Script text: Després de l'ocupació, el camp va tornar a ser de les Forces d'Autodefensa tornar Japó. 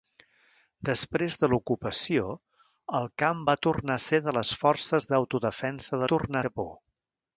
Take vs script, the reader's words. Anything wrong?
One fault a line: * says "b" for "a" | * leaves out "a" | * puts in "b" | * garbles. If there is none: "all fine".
all fine